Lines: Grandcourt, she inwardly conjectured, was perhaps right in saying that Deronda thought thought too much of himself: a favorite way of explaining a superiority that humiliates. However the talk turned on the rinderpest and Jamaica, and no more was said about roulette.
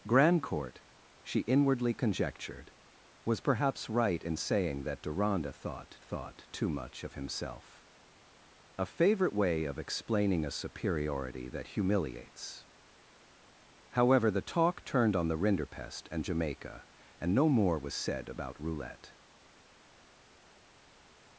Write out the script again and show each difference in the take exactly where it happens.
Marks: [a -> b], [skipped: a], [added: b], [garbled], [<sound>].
Grandcourt, she inwardly conjectured, was perhaps right in saying that Deronda thought thought too much of himself: a favorite way of explaining a superiority that humiliates. However the talk turned on the rinderpest and Jamaica, and no more was said about roulette.